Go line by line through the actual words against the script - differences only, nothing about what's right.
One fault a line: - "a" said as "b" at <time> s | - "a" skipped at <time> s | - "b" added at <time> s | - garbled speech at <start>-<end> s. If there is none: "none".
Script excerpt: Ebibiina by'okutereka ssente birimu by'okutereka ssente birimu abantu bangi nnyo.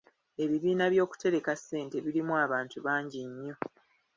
- "by'okutereka ssente birimu" skipped at 2.3 s